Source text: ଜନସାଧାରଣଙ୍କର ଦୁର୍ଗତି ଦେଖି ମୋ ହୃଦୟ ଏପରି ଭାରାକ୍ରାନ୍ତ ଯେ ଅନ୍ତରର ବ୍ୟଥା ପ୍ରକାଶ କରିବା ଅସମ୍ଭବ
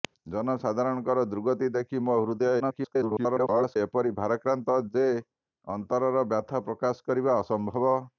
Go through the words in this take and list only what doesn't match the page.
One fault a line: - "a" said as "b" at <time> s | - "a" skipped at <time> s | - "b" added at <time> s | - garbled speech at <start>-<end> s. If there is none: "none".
- garbled speech at 2.6-3.8 s